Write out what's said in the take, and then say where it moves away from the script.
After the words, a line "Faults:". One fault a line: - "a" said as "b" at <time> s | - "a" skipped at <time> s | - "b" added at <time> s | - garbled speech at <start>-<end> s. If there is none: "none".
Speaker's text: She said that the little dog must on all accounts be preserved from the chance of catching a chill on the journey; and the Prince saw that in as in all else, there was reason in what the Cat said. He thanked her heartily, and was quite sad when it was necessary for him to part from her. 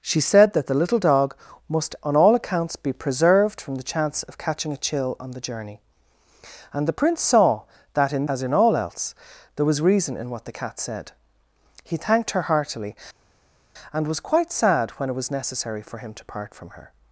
She said that the little dog must on all accounts be preserved from the chance of catching a chill on the journey; and the Prince saw that in as in all else, there was reason in what the Cat said. He thanked her heartily, and was quite sad when it was necessary for him to part from her.
Faults:
none